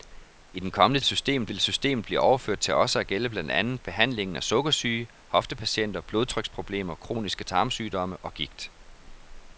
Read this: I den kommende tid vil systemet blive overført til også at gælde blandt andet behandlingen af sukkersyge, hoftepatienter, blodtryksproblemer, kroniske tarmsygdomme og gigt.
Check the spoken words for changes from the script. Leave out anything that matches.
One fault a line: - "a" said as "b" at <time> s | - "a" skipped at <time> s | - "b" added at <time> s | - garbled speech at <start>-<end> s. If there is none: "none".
- "tid" said as "systemet" at 1.0 s